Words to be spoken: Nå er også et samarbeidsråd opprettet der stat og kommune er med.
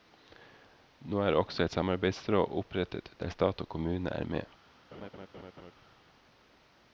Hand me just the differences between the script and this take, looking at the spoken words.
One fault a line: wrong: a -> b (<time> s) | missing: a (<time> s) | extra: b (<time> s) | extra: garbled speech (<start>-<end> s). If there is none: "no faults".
no faults